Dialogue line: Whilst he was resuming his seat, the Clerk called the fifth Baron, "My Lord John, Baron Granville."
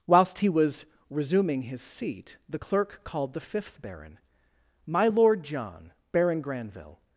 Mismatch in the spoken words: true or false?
false